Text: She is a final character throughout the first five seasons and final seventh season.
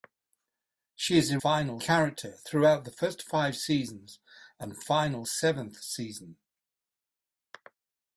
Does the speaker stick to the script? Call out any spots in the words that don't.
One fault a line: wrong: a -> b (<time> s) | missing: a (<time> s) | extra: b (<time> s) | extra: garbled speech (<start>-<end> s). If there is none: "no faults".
no faults